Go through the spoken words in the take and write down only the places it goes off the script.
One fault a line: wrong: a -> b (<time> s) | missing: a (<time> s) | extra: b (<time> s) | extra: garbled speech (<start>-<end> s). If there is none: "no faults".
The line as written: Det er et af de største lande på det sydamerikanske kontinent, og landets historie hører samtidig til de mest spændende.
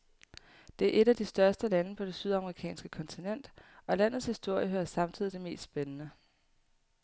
missing: til (5.3 s)